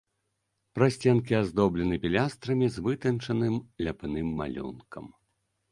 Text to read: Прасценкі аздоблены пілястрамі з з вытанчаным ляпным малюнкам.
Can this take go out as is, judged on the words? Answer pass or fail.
fail